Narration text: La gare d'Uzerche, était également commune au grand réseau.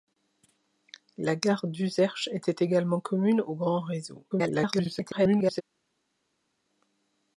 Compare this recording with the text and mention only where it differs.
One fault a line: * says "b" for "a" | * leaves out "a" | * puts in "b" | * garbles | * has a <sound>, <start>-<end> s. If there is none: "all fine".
* garbles